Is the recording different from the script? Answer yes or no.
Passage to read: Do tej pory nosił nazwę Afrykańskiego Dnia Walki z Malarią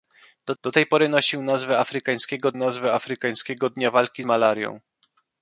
yes